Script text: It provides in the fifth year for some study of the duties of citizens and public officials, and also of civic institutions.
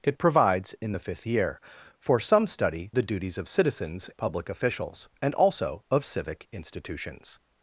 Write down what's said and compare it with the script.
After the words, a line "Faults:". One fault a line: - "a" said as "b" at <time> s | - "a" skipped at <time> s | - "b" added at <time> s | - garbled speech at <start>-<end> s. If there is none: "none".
It provides in the fifth year for some study the duties of citizens public officials, and also of civic institutions.
Faults:
- "of" skipped at 2.9 s
- "and" skipped at 4.1 s